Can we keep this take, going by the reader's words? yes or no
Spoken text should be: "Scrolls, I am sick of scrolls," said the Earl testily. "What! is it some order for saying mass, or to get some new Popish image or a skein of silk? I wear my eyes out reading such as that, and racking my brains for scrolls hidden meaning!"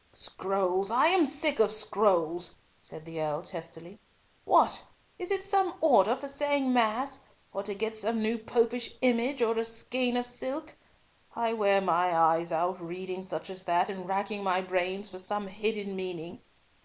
no